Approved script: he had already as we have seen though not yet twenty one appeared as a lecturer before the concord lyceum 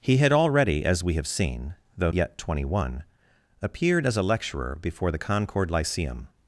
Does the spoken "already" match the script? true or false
true